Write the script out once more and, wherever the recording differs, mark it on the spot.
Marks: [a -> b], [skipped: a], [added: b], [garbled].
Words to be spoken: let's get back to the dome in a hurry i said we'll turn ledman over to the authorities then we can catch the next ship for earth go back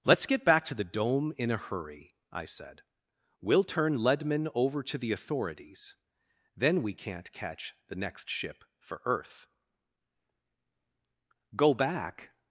let's get back to the dome in a hurry i said we'll turn ledman over to the authorities then we [can -> can't] catch the next ship for earth go back